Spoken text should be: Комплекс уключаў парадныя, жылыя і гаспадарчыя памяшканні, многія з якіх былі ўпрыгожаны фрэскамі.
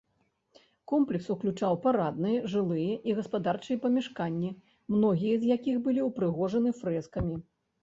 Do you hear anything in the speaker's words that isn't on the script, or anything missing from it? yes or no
no